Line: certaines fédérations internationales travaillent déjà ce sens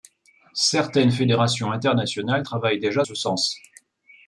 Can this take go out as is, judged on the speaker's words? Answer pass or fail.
pass